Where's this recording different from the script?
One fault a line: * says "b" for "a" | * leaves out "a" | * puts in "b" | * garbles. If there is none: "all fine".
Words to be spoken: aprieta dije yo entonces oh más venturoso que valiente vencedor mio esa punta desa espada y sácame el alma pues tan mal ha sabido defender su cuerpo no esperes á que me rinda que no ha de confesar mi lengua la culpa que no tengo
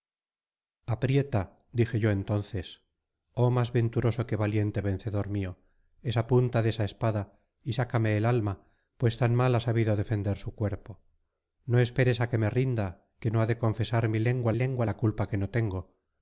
* puts in "lengua"